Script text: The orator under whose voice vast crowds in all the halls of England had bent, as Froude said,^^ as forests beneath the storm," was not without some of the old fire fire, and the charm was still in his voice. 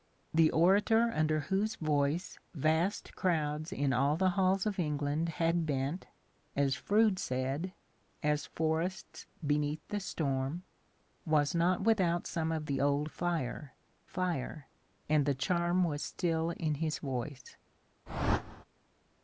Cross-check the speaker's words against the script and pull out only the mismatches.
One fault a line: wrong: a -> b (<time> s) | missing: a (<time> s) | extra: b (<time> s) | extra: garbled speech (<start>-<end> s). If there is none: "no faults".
no faults